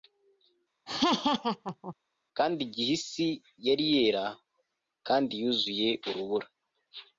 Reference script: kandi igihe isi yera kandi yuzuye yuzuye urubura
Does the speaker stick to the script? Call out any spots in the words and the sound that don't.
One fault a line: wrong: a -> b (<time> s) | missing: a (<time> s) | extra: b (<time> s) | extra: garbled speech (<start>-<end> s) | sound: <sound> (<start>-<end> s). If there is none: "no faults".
sound: laugh (0.9-1.9 s)
extra: yari (3.7 s)
missing: yuzuye (5.9 s)